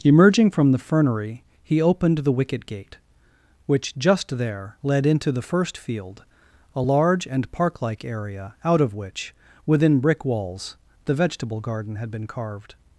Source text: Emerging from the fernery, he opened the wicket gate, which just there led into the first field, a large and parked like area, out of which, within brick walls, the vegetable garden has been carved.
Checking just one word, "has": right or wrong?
wrong